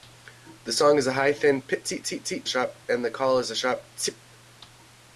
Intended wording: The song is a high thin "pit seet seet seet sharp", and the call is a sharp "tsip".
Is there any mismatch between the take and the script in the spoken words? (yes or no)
no